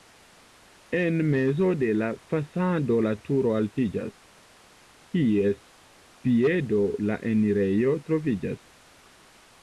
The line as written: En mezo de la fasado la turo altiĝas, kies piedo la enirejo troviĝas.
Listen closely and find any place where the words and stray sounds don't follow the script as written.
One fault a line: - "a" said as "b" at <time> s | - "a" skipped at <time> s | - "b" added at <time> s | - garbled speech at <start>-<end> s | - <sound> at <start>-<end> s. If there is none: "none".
none